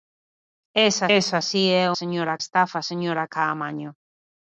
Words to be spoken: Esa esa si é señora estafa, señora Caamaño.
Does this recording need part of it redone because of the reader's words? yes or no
no